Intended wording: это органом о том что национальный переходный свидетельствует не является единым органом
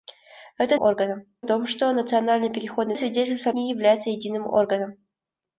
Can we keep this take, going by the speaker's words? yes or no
yes